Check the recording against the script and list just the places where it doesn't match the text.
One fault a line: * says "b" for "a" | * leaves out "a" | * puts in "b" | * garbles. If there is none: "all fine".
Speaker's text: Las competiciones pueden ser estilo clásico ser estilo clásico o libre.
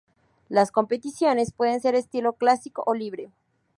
* leaves out "ser estilo clásico"